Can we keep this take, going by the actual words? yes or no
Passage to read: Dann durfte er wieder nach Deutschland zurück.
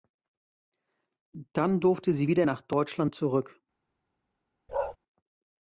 no